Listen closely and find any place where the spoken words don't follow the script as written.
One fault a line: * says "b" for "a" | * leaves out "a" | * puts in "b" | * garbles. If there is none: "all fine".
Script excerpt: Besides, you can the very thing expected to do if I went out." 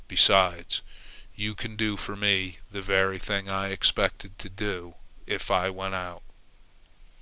* puts in "do for me"
* puts in "I"